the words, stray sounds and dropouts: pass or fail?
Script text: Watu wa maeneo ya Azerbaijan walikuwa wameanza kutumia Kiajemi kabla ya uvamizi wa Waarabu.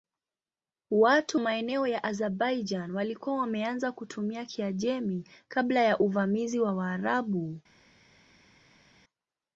fail